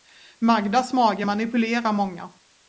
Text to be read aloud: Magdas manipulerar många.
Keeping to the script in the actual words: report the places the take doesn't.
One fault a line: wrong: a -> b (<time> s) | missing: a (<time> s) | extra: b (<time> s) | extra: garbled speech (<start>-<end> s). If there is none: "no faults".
extra: mage (0.9 s)